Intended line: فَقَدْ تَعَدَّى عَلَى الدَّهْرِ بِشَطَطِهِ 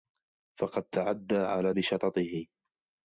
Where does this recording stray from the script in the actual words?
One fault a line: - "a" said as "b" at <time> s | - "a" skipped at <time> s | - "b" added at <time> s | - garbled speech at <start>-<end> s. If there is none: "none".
- "الدَّهْرِ" skipped at 1.7 s